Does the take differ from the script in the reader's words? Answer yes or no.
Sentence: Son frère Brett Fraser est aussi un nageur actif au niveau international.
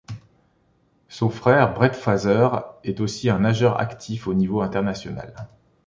no